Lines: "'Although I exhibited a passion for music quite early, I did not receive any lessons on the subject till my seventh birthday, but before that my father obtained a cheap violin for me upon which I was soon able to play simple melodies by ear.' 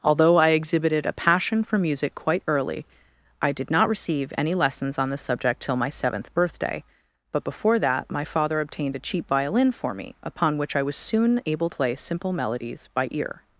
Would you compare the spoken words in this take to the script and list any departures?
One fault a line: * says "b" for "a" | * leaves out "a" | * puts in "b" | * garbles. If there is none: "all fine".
* leaves out "to"